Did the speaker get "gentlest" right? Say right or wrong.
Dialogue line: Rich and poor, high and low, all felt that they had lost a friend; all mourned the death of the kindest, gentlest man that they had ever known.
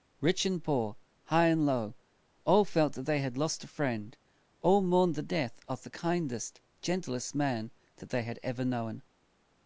right